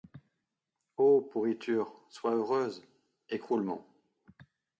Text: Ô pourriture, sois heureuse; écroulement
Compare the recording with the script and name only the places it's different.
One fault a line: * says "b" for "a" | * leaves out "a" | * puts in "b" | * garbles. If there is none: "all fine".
all fine